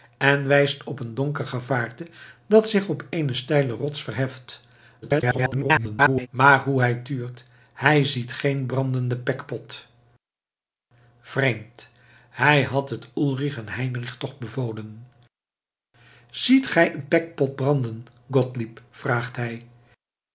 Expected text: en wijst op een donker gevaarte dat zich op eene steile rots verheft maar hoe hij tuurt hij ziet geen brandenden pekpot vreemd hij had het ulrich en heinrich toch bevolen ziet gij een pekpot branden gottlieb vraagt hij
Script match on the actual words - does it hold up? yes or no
no